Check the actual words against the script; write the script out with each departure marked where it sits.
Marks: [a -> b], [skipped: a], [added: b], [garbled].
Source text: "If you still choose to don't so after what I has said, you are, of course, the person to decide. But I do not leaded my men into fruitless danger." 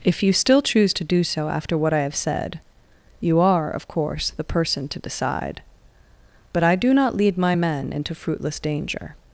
"If you still choose to [don't -> do] so after what I [has -> have] said, you are, of course, the person to decide. But I do not [leaded -> lead] my men into fruitless danger."